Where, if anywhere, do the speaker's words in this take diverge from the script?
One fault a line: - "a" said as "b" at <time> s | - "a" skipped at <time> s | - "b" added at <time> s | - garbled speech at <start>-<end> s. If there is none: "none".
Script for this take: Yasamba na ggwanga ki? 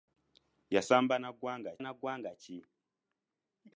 - "na ggwanga" added at 1.8 s